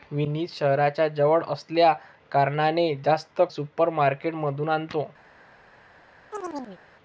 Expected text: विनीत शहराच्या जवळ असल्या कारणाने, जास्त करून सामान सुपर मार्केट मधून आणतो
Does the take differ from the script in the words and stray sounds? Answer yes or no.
yes